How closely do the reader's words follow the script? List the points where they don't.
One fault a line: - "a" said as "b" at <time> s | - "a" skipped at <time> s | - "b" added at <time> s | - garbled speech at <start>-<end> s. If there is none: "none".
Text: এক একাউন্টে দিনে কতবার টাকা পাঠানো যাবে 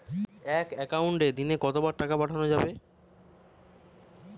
none